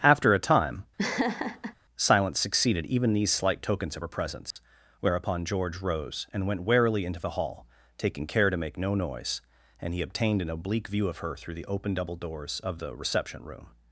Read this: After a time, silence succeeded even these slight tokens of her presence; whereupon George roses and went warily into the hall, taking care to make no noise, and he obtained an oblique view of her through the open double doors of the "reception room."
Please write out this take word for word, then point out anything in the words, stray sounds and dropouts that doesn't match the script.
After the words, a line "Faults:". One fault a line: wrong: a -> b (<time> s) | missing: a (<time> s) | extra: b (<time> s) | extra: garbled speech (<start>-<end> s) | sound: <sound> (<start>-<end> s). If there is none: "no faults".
After a time, silence succeeded even these slight tokens of her presence; whereupon George rose and went warily into the hall, taking care to make no noise, and he obtained an oblique view of her through the open double doors of the "reception room."
Faults:
sound: laugh (1.0-1.7 s)
sound: dropout (4.5-4.6 s)
wrong: roses -> rose (5.8 s)